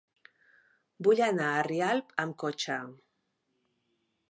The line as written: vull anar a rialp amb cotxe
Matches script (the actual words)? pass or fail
pass